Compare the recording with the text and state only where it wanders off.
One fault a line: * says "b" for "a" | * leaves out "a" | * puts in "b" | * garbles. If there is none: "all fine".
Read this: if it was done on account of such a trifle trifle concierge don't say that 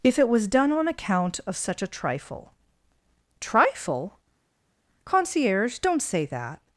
all fine